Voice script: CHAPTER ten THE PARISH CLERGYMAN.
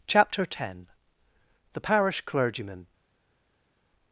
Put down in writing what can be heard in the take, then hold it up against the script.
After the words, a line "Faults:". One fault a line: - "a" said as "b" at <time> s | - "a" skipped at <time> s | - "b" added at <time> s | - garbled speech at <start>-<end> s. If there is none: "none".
CHAPTER ten THE PARISH CLERGYMAN.
Faults:
none